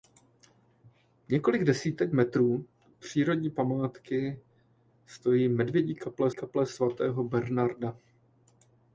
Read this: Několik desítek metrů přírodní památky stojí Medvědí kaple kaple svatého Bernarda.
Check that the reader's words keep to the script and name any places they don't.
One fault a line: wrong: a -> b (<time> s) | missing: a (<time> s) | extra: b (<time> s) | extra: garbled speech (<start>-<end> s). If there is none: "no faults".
no faults